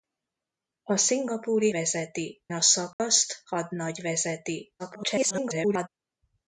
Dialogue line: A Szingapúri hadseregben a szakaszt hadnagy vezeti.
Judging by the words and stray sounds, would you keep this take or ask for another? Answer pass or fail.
fail